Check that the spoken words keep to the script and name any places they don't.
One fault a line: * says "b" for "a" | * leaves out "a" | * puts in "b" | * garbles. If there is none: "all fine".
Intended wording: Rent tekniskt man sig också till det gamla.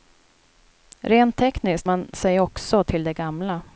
all fine